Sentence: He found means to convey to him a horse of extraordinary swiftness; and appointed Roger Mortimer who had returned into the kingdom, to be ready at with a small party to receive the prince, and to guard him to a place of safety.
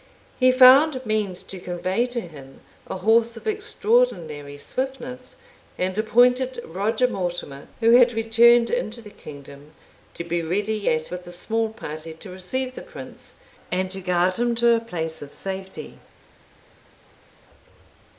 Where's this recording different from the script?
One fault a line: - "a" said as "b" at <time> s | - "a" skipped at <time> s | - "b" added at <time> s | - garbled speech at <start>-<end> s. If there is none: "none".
none